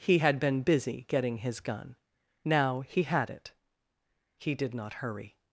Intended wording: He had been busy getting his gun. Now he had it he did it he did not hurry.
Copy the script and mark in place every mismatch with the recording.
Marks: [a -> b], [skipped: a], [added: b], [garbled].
He had been busy getting his gun. Now he had it he did [skipped: it he did] not hurry.